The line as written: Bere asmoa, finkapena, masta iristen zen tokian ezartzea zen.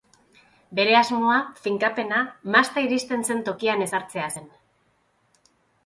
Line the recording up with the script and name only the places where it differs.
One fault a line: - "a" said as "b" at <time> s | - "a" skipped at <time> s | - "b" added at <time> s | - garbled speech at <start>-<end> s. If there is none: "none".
none